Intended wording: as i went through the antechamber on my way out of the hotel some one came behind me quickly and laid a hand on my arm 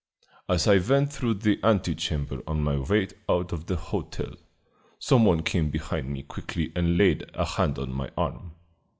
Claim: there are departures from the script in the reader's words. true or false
false